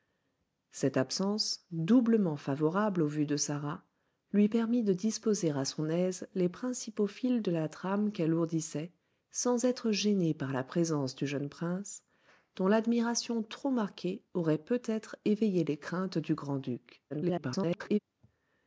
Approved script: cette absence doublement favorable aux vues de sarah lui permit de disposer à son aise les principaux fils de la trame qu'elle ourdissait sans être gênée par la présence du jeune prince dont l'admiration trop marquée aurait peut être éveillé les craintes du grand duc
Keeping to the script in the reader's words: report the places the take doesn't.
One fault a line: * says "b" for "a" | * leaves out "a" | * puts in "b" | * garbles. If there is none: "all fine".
* garbles